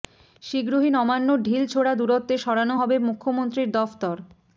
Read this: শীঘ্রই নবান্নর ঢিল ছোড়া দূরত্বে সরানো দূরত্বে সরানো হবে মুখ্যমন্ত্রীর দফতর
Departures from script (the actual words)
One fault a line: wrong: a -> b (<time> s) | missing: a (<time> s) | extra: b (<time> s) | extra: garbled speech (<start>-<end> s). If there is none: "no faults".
missing: দূরত্বে সরানো (2.8 s)